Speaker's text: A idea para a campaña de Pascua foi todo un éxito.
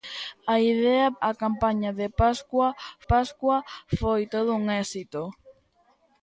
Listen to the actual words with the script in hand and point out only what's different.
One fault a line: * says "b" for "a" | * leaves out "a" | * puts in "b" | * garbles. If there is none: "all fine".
* leaves out "para"
* puts in "Pascua"